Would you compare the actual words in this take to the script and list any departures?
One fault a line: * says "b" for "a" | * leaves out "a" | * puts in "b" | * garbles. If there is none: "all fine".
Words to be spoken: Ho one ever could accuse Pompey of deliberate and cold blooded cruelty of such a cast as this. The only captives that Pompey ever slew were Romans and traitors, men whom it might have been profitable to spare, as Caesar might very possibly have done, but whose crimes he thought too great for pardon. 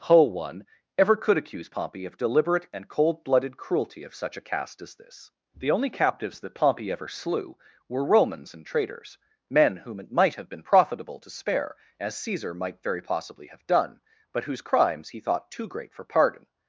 all fine